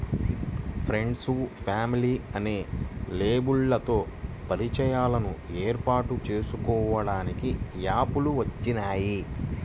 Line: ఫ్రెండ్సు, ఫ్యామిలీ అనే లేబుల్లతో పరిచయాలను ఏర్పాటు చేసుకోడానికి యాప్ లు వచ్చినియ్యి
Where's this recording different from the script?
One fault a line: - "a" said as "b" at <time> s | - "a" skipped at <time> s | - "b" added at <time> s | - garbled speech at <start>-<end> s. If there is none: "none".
none